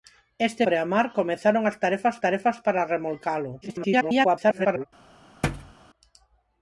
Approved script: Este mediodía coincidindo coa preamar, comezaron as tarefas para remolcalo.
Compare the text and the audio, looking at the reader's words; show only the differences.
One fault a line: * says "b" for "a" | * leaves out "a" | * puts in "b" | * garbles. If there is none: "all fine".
* leaves out "mediodía coincidindo coa"
* puts in "tarefas"
* garbles